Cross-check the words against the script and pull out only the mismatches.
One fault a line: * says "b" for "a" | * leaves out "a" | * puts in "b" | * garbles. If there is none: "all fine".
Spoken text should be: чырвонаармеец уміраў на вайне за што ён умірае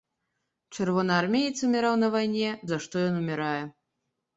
all fine